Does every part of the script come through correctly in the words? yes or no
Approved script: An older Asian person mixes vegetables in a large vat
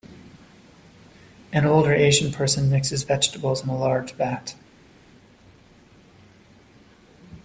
yes